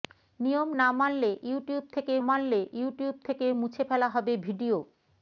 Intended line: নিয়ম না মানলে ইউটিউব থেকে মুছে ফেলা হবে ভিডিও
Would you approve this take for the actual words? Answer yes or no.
no